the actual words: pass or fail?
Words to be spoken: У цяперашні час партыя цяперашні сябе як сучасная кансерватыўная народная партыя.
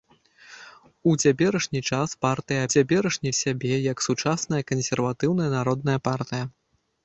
pass